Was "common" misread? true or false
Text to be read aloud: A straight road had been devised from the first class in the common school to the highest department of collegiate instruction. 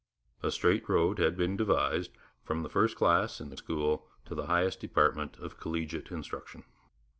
true